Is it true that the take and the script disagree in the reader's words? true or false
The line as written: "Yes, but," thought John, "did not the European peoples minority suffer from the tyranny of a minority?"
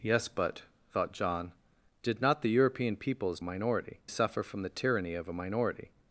false